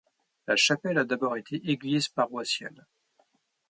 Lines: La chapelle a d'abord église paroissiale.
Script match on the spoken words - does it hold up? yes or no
no